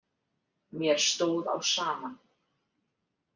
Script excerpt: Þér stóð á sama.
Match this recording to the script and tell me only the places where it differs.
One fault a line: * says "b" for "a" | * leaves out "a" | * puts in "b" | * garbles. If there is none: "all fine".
* says "Mér" for "Þér"